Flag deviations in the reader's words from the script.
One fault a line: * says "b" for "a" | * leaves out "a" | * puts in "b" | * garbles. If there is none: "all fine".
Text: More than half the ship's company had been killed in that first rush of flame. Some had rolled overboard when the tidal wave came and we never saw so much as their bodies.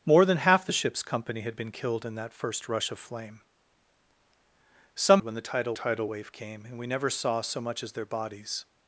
* leaves out "had rolled overboard"
* puts in "tidal"